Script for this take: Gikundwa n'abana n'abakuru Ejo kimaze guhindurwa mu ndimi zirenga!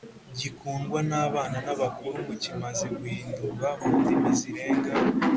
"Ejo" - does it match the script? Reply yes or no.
no